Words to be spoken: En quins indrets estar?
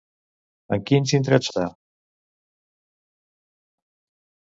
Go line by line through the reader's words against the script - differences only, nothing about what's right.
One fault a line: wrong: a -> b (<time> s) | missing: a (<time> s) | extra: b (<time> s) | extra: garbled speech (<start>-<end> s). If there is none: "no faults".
no faults